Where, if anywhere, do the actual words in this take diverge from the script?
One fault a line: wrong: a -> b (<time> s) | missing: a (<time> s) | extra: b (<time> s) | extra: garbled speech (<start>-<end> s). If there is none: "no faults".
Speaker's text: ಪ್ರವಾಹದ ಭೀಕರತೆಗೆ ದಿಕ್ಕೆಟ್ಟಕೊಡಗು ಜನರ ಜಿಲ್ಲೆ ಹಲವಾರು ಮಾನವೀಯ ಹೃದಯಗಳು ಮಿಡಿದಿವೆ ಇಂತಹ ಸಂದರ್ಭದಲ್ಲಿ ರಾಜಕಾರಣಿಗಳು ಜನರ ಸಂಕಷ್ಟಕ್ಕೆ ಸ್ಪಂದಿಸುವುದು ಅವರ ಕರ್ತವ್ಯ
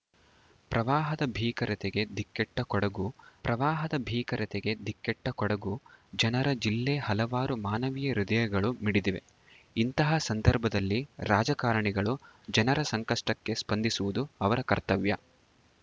extra: ಪ್ರವಾಹದ ಭೀಕರತೆಗೆ ದಿಕ್ಕೆಟ್ಟಕೊಡಗು (3.4 s)